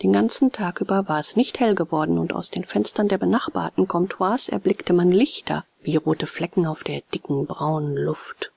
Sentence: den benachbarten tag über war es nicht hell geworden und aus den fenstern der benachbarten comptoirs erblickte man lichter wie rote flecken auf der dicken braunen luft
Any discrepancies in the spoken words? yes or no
yes